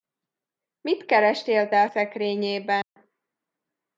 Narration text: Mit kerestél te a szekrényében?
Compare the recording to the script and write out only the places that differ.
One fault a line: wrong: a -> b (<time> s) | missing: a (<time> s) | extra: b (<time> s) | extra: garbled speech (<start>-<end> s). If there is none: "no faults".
no faults